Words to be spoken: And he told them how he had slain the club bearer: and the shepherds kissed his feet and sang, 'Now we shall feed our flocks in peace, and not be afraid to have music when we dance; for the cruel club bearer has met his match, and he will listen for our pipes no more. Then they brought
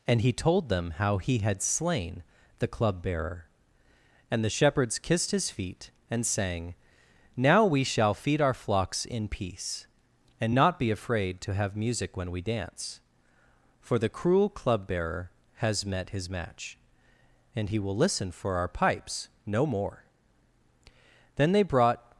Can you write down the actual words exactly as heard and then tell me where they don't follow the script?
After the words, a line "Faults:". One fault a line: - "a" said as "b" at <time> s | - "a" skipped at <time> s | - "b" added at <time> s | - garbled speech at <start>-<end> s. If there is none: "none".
And he told them how he had slain the club bearer: and the shepherds kissed his feet and sang, 'Now we shall feed our flocks in peace, and not be afraid to have music when we dance; for the cruel club bearer has met his match, and he will listen for our pipes no more. Then they brought
Faults:
none